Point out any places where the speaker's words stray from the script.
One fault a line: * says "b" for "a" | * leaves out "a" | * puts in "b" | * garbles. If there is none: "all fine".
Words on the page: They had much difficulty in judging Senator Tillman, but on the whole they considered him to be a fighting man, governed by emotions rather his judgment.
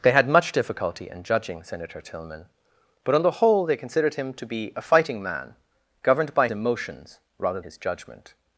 all fine